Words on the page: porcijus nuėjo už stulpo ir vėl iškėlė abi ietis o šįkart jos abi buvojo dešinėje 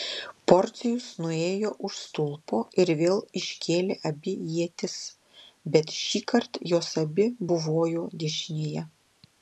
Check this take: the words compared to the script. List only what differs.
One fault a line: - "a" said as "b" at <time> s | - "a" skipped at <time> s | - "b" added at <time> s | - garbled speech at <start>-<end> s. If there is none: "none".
- "o" said as "bet" at 5.8 s